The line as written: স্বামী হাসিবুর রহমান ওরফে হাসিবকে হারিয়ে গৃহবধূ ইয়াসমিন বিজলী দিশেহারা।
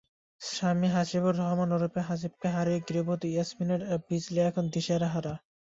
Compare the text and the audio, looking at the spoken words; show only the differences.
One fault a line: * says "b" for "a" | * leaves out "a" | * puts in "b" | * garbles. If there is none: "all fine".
* puts in "এখন"